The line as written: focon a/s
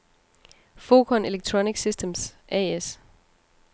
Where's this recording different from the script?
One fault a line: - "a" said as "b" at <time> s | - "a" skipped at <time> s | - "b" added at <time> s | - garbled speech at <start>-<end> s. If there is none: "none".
- "electronic systems" added at 1.3 s